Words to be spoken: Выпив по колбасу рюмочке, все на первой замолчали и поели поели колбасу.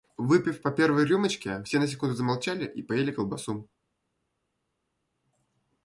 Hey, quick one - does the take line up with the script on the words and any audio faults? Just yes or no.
no